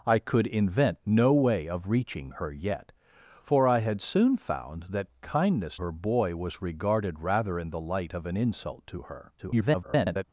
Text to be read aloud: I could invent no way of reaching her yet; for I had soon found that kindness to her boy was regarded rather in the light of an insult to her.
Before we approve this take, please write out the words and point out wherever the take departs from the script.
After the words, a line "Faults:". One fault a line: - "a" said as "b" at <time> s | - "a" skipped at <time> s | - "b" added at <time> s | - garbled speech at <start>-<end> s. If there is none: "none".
I could invent no way of reaching her yet; for I had soon found that kindness her boy was regarded rather in the light of an insult to her. [garbled]
Faults:
- "to" skipped at 5.8 s
- garbled speech at 9.4-10.2 s